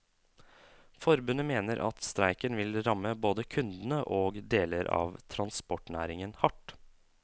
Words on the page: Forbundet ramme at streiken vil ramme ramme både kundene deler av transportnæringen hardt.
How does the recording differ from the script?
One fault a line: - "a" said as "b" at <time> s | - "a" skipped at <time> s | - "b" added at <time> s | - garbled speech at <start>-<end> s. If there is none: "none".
- "ramme" said as "mener" at 1.5 s
- "ramme" skipped at 3.1 s
- "og" added at 4.2 s